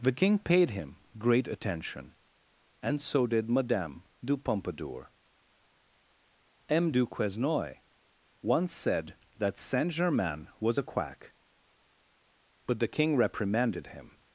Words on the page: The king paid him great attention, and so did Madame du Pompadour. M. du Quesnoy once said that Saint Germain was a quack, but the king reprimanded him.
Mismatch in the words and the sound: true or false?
false